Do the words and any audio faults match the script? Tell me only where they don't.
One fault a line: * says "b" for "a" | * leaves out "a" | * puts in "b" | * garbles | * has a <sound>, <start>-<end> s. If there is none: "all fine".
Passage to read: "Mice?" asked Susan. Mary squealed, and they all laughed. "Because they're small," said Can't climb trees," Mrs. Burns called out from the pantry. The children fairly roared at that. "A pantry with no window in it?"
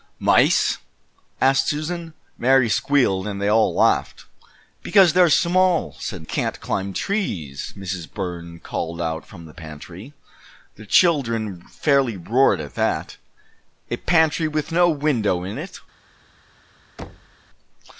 * has a thud, 17.0-17.4 s